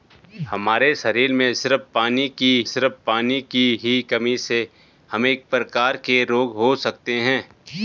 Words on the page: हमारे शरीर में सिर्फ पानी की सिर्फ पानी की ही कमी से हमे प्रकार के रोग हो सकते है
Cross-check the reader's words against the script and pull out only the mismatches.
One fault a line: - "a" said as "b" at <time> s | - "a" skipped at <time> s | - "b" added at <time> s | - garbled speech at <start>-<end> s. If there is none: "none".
none